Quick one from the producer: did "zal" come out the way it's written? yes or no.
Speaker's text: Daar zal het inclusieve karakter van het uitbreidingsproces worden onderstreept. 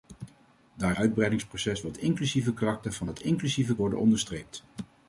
no